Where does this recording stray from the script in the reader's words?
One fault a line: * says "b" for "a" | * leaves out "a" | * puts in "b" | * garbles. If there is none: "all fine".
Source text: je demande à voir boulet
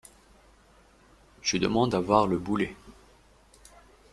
* puts in "le"